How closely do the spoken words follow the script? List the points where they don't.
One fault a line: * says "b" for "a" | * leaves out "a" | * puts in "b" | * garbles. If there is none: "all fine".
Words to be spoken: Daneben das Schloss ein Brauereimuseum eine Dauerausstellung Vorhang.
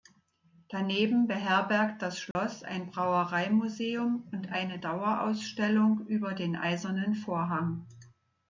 * puts in "beherbergt"
* puts in "und"
* puts in "über den Eisernen"